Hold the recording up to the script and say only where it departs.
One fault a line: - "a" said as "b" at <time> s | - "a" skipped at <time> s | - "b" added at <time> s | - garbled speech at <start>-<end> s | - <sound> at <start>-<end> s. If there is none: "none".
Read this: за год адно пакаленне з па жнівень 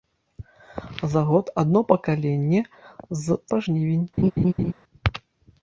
- laugh at 4.2-4.7 s